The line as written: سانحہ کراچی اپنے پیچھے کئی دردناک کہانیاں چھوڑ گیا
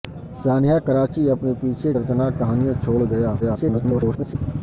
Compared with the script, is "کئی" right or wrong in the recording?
wrong